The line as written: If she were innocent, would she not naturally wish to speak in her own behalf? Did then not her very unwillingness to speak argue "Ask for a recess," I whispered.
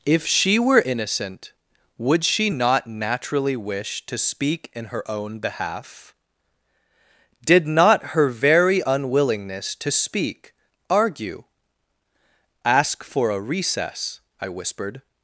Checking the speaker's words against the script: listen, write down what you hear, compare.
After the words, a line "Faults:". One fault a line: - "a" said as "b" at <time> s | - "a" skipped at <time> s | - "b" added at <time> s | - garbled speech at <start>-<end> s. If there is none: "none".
If she were innocent, would she not naturally wish to speak in her own behalf? Did not her very unwillingness to speak argue "Ask for a recess," I whispered.
Faults:
- "then" skipped at 7.7 s